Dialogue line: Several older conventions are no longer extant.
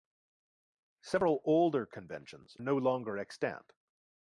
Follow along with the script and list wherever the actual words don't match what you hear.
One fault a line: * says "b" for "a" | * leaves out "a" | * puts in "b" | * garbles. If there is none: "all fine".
* leaves out "are"